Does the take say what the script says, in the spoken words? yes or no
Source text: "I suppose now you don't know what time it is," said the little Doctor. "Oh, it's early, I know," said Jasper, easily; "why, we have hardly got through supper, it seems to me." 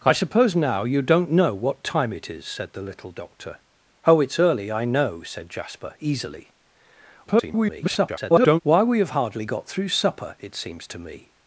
no